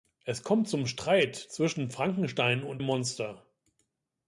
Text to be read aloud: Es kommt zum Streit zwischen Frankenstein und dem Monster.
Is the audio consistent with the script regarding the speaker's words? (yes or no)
no